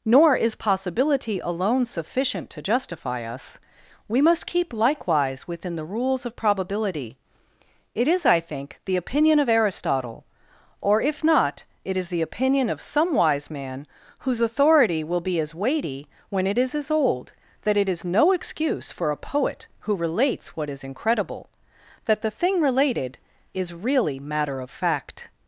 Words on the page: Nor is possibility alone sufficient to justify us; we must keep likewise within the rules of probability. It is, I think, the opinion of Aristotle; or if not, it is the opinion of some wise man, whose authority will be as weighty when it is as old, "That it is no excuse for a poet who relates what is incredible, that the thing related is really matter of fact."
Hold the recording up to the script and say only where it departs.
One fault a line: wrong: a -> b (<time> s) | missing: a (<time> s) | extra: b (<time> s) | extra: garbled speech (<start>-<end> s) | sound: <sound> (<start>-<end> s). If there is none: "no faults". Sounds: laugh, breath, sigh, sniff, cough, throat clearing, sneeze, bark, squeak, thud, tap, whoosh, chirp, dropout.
no faults